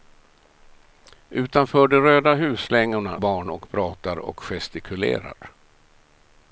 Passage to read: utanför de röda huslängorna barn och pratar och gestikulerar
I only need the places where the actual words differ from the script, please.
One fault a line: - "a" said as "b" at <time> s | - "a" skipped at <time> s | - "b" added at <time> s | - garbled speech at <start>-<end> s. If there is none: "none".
none